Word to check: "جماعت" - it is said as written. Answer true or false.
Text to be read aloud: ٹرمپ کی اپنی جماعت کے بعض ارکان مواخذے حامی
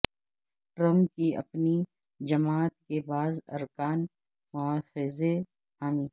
true